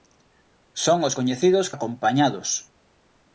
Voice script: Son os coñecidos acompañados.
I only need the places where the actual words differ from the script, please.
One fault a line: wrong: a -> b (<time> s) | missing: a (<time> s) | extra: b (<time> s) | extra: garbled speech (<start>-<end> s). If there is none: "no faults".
no faults